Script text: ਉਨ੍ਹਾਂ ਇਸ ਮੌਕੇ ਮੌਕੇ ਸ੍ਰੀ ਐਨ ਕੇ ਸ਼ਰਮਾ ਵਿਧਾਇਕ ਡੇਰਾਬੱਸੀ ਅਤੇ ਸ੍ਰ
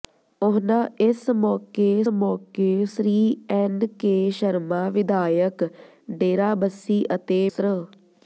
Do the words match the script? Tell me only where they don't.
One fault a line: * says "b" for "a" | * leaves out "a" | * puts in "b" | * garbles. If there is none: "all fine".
all fine